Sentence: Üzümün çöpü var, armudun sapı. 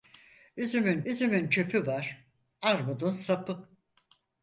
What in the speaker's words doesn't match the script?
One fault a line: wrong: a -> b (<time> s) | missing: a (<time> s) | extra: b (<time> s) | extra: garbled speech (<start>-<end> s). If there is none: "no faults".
extra: üzümün (1.0 s)